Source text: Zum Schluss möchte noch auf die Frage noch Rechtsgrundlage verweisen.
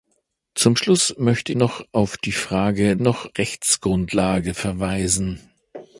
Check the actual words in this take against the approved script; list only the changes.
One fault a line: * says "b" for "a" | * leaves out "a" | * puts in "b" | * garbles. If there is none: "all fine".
all fine